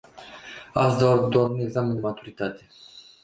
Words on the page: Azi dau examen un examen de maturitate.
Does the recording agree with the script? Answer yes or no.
no